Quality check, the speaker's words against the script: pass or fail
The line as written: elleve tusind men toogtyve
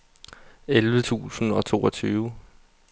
fail